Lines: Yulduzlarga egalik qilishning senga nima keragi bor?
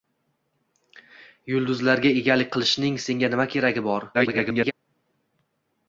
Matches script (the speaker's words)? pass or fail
fail